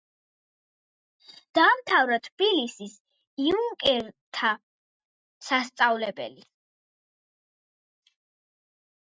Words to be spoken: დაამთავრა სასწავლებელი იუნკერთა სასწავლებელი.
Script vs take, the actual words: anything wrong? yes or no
yes